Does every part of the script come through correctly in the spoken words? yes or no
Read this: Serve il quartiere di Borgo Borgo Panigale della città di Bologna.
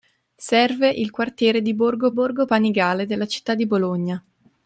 yes